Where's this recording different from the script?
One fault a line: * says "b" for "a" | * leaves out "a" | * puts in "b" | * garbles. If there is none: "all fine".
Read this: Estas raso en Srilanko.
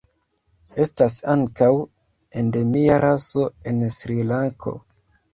* puts in "ankaŭ endemia"